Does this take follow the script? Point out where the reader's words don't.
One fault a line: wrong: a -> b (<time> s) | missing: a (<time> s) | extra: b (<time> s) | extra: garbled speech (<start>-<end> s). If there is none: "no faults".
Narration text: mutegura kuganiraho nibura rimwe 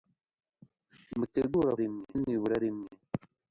wrong: kuganiraho -> rimwe (1.8 s)